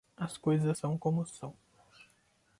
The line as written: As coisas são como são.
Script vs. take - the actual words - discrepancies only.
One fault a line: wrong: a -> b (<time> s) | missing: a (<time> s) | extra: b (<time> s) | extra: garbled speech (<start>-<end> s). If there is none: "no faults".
no faults